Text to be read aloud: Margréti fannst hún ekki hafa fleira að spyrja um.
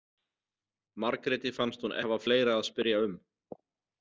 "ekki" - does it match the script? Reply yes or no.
no